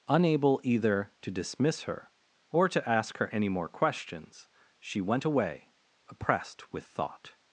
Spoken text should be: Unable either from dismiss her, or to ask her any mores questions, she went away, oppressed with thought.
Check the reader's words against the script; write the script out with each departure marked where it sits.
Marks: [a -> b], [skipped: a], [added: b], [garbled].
Unable either [from -> to] dismiss her, or to ask her any [mores -> more] questions, she went away, oppressed with thought.